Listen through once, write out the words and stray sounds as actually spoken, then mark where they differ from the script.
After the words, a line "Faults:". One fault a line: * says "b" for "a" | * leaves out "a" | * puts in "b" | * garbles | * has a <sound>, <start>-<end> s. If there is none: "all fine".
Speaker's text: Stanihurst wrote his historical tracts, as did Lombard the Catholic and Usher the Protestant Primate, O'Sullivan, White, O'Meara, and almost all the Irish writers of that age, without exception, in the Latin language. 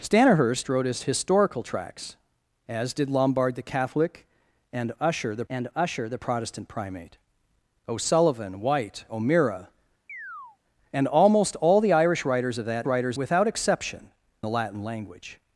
Stanihurst wrote his historical tracts, as did Lombard the Catholic and Usher the and Usher the Protestant Primate, O'Sullivan, White, O'Meara, and almost all the Irish writers of that writers, without exception, the Latin language.
Faults:
* puts in "and Usher the"
* has a chirp, 10.1-10.6 s
* says "writers" for "age"
* leaves out "in"